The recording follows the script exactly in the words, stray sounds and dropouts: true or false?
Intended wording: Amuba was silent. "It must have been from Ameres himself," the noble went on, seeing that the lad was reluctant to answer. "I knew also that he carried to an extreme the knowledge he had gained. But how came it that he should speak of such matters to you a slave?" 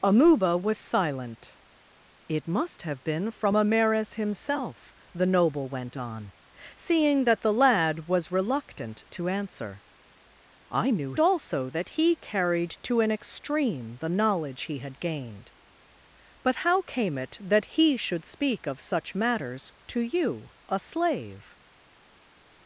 true